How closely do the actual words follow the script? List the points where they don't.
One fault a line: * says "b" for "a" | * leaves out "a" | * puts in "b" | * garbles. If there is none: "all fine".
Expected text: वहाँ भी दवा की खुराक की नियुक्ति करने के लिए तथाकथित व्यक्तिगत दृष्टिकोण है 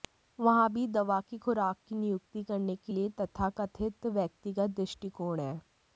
all fine